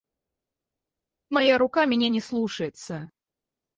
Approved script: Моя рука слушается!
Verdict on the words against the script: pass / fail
fail